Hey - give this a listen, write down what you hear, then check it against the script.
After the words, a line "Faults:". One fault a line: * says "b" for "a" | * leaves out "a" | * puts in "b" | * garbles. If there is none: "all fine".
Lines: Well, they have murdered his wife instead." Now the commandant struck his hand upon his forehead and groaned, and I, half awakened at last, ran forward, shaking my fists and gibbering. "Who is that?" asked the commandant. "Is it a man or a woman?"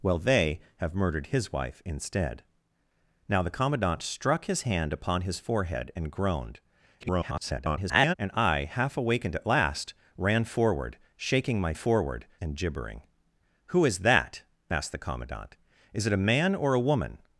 Well, they have murdered his wife instead." Now the commandant struck his hand upon his forehead and groaned, [garbled] and I, half awakened at last, ran forward, shaking my forward and gibbering. "Who is that?" asked the commandant. "Is it a man or a woman?"
Faults:
* garbles
* says "forward" for "fists"